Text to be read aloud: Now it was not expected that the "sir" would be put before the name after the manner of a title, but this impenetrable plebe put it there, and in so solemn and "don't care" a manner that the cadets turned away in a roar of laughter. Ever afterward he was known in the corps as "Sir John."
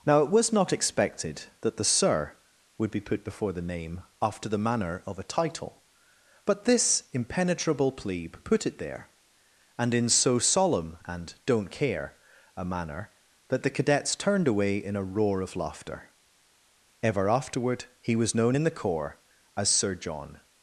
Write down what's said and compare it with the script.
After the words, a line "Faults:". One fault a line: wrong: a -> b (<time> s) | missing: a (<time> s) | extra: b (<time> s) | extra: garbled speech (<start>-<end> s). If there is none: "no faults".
Now it was not expected that the "sir" would be put before the name after the manner of a title, but this impenetrable plebe put it there, and in so solemn and "don't care" a manner that the cadets turned away in a roar of laughter. Ever afterward he was known in the corps as "Sir John."
Faults:
no faults